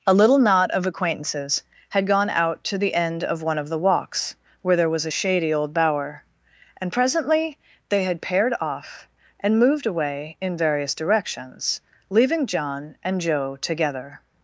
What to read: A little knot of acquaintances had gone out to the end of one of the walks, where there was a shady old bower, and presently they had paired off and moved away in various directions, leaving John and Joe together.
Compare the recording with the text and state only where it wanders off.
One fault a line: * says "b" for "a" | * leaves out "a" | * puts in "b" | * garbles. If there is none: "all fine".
all fine